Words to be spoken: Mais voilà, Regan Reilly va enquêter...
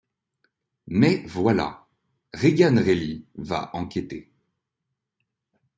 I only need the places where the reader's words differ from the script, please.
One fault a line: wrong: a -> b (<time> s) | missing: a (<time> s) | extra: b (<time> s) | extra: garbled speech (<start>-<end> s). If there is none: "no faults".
no faults